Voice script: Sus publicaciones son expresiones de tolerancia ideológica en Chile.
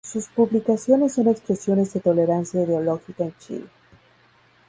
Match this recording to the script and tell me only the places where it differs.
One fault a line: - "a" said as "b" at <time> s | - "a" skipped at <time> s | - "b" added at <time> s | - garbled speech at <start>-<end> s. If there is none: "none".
none